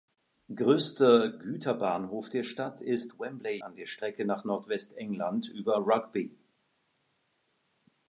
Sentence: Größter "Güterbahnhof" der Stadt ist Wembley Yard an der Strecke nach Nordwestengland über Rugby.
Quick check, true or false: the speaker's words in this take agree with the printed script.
false